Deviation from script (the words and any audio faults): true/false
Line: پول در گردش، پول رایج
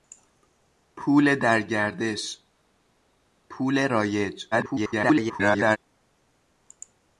true